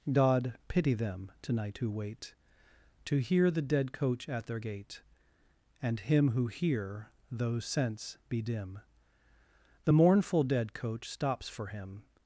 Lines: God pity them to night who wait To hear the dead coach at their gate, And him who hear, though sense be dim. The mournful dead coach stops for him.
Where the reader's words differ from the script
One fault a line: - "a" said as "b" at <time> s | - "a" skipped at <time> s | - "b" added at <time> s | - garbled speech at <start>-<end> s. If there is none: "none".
none